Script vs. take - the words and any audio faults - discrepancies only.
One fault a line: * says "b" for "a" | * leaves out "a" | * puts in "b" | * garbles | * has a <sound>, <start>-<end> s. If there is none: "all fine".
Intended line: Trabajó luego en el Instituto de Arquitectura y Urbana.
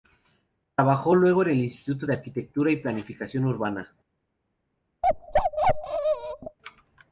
* puts in "Planificación"
* has a bark, 5.0-6.6 s